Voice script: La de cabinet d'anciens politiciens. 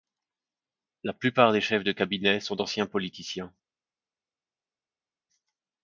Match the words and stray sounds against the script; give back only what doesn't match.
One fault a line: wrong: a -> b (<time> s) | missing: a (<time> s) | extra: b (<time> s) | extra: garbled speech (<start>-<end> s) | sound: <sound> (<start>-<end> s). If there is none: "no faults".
extra: plupart des chefs (1.1 s)
extra: sont (2.4 s)